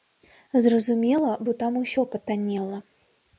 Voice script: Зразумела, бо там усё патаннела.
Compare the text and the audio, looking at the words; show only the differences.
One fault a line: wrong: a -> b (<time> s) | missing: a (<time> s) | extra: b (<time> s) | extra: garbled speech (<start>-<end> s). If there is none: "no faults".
no faults